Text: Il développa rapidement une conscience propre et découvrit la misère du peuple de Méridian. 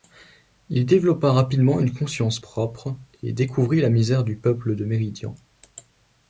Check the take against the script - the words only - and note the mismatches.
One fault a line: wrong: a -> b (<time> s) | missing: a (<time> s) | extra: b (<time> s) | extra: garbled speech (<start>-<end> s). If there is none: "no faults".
no faults